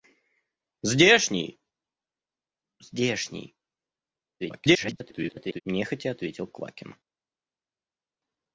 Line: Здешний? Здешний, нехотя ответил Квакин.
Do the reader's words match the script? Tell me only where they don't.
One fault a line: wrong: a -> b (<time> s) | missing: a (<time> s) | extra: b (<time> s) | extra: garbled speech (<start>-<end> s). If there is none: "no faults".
extra: garbled speech (4.4-5.6 s)